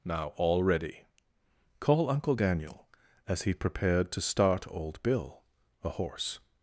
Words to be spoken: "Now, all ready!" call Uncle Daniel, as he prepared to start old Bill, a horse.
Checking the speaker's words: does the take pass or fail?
pass